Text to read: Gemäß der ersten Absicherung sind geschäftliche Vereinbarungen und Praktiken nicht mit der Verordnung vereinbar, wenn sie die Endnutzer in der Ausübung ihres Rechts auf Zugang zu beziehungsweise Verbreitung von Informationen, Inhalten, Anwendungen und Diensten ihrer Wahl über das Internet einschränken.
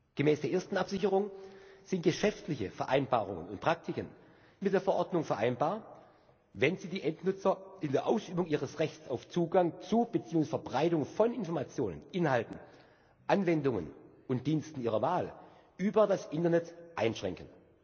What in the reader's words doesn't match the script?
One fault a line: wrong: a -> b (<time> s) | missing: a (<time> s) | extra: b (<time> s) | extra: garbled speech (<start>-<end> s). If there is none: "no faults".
missing: nicht (4.1 s)